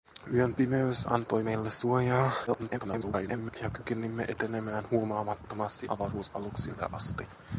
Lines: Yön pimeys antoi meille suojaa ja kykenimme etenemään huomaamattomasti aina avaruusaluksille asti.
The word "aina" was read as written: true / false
false